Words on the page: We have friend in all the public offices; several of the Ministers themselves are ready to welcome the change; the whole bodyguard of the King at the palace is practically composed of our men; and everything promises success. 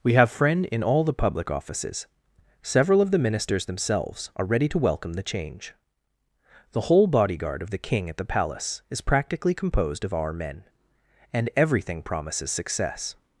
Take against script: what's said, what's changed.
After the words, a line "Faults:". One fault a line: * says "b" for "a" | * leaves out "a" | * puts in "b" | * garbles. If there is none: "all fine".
We have friend in all the public offices; several of the Ministers themselves are ready to welcome the change; the whole bodyguard of the King at the palace is practically composed of our men; and everything promises success.
Faults:
all fine